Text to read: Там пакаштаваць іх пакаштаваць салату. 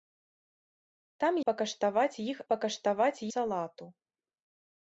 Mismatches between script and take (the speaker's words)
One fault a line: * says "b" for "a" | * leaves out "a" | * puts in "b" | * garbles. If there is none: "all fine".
all fine